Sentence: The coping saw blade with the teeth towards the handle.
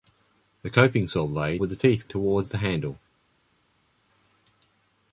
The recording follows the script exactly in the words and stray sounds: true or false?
true